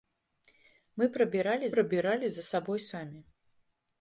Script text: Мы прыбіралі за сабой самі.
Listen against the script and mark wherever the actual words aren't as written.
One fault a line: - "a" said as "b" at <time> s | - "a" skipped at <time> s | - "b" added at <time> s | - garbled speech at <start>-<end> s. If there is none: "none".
- "прыбіралі" added at 1.7 s